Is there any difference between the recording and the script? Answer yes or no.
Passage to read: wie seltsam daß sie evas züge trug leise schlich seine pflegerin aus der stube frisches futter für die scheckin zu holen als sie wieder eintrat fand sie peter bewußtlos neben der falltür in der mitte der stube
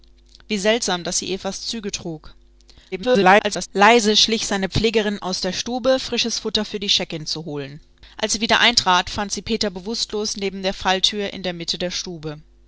yes